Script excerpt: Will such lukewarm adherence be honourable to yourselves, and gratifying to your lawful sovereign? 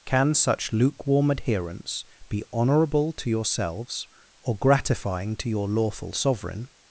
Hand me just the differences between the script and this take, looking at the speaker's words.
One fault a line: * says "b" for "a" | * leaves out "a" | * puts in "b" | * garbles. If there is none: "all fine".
* says "Can" for "Will"
* says "or" for "and"